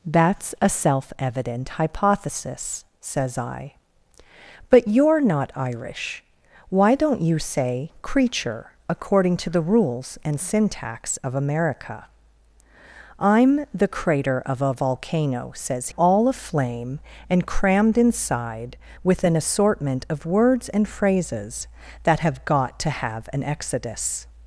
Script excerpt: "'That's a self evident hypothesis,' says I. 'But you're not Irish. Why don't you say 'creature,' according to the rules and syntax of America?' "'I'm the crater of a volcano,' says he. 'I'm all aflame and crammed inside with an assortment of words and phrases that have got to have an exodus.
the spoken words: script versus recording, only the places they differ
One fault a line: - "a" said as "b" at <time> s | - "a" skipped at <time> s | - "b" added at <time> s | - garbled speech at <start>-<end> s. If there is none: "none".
- "he I'm" skipped at 15.9 s